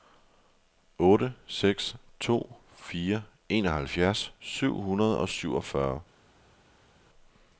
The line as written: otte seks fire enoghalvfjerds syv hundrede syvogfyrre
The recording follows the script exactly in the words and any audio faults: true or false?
false